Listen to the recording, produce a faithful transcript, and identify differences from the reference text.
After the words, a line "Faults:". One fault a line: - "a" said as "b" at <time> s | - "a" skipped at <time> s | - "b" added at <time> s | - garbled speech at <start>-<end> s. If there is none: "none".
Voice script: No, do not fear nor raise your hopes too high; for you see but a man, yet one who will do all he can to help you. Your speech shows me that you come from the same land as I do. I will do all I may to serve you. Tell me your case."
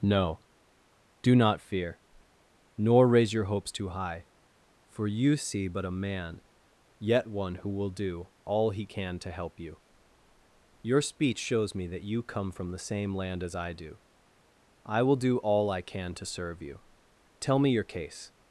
No, do not fear nor raise your hopes too high; for you see but a man, yet one who will do all he can to help you. Your speech shows me that you come from the same land as I do. I will do all I can to serve you. Tell me your case."
Faults:
- "may" said as "can" at 15.8 s